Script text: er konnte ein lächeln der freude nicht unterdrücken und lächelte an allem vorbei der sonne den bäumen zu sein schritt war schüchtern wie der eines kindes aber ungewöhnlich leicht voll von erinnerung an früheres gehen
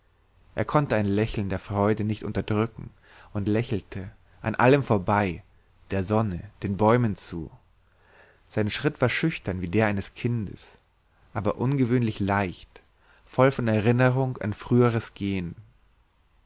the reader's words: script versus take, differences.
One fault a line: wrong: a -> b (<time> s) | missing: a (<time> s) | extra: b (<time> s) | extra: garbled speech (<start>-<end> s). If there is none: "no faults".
no faults